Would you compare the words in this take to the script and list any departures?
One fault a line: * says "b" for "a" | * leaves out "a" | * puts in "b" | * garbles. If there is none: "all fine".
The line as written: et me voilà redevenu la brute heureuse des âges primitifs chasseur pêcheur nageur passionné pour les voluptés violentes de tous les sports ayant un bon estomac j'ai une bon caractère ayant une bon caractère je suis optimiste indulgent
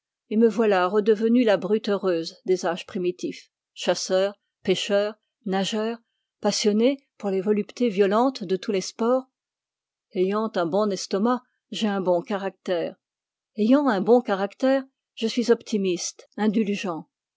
* says "un" for "une"
* says "un" for "une"